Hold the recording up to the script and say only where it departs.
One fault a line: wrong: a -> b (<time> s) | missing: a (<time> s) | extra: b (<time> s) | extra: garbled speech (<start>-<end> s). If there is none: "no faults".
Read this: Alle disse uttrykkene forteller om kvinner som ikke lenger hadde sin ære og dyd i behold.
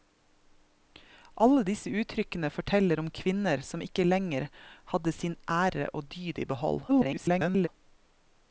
extra: garbled speech (6.9-7.7 s)